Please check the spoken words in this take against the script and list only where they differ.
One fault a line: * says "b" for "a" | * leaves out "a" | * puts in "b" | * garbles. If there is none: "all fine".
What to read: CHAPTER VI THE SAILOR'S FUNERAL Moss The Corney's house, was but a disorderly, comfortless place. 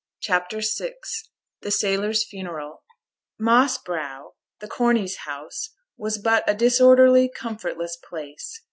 * puts in "Brow"